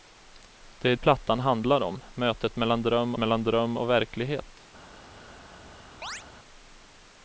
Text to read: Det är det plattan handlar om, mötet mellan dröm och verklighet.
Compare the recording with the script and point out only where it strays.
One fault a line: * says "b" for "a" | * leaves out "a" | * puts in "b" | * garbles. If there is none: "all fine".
* leaves out "det"
* puts in "mellan dröm"